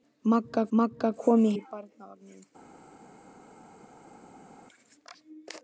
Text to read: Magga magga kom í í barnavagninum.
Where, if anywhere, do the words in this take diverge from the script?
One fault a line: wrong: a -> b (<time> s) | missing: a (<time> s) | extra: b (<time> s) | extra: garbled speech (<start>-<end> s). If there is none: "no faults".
no faults